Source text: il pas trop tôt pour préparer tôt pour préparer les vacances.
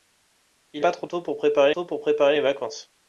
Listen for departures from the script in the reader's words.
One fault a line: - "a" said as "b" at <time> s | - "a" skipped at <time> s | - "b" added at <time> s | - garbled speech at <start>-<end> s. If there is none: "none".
none